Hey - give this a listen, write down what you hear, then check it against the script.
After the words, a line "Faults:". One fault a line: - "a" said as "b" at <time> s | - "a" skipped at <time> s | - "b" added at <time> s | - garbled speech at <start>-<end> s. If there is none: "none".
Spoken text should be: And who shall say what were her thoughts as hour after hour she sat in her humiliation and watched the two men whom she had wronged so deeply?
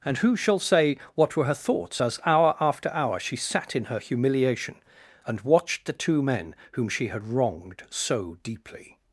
And who shall say what were her thoughts as hour after hour she sat in her humiliation and watched the two men whom she had wronged so deeply?
Faults:
none